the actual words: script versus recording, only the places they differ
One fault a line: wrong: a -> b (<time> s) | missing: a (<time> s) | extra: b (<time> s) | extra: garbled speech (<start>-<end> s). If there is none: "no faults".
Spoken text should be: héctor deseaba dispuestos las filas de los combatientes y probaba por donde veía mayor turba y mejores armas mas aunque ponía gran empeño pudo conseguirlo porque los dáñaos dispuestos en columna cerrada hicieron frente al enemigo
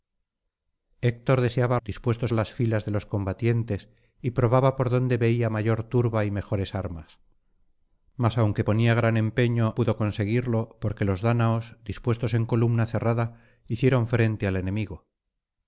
no faults